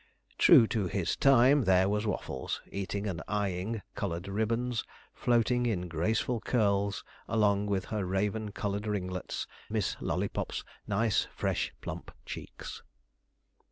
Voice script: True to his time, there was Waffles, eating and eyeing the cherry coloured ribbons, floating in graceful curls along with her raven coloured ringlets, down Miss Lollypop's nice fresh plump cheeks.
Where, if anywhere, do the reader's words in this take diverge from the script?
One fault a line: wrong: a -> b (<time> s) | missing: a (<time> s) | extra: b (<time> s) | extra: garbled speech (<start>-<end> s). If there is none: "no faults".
missing: the cherry (3.8 s)
missing: down (9.5 s)